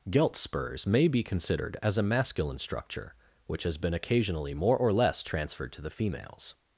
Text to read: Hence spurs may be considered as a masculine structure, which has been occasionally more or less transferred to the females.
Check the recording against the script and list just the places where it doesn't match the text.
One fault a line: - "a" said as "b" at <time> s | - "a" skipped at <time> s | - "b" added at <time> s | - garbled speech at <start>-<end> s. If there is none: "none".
- "Hence" said as "Gelt" at 0.1 s